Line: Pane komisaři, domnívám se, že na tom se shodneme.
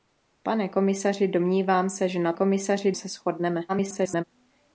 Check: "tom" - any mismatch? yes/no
yes